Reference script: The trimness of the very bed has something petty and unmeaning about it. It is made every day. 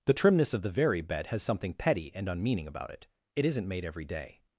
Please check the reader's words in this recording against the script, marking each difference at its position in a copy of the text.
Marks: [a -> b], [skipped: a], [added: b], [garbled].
The trimness of the very bed has something petty and unmeaning about it. It [is -> isn't] made every day.